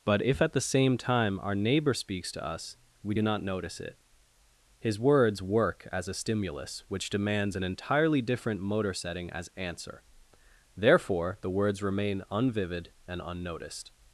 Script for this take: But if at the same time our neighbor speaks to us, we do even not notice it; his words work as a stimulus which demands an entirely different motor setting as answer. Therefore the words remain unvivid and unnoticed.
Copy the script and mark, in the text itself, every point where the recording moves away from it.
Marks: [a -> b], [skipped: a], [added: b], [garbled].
But if at the same time our neighbor speaks to us, we do [skipped: even] not notice it; his words work as a stimulus which demands an entirely different motor setting as answer. Therefore the words remain unvivid and unnoticed.